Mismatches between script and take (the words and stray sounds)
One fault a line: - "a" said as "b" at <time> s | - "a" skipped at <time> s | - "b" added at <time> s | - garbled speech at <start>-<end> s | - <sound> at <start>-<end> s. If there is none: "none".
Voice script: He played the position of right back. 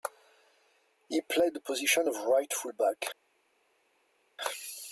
- "full" added at 2.5 s